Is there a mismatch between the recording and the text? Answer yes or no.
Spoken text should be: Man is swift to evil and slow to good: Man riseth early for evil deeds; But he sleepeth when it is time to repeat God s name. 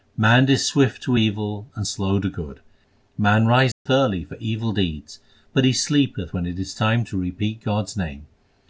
no